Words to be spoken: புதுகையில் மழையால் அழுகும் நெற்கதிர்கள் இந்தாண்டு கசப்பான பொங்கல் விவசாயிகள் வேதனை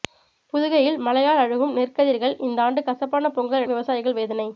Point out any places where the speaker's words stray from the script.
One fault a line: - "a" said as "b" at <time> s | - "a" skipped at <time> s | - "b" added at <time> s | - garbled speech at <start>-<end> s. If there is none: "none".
none